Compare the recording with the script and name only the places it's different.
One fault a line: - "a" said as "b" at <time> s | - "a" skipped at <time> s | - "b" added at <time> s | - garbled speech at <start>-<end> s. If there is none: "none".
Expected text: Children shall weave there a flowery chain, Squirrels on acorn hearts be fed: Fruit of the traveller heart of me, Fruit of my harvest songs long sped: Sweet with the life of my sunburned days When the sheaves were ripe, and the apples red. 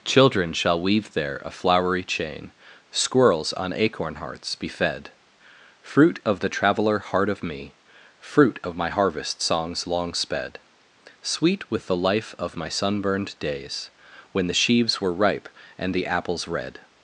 none